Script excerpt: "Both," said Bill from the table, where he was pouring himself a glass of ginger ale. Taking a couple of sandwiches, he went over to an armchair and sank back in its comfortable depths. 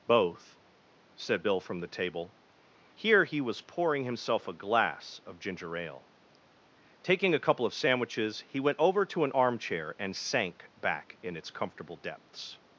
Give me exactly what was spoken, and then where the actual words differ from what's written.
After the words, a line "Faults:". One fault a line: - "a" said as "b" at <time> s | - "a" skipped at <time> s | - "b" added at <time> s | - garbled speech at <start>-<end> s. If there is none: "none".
"Both," said Bill from the table, here he was pouring himself a glass of ginger ale. Taking a couple of sandwiches, he went over to an armchair and sank back in its comfortable depths.
Faults:
- "where" said as "here" at 2.9 s